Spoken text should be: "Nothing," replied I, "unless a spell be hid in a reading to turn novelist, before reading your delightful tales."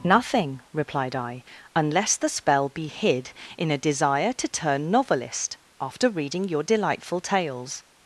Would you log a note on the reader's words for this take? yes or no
yes